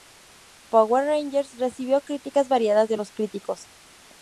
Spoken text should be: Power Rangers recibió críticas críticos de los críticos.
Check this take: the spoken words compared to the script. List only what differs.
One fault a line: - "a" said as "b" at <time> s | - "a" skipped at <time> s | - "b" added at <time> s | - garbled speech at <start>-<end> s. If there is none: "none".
- "críticos" said as "variadas" at 2.5 s